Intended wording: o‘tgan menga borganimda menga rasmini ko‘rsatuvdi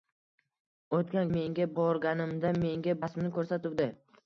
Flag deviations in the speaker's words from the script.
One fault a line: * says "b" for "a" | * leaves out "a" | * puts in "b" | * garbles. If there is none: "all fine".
all fine